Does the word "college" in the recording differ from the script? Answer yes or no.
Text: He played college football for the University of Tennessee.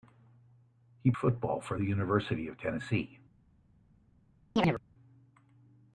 yes